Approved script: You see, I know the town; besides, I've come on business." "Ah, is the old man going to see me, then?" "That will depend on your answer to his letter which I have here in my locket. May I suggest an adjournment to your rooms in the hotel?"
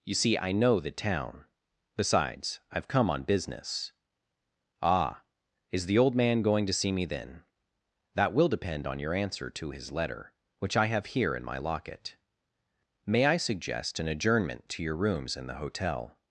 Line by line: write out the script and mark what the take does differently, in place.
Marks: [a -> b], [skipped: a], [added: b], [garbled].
You see, I know the town; besides, I've come on business." "Ah, is the old man going to see me, then?" "That will depend on your answer to his letter which I have here in my locket. May I suggest an adjournment to your rooms in the hotel?"